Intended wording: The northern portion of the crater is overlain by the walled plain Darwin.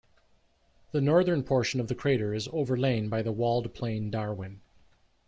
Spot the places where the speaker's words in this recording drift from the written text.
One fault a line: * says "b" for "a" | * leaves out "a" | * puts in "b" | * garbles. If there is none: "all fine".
all fine